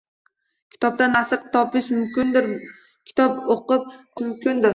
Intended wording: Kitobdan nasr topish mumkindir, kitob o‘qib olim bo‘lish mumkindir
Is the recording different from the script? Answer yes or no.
yes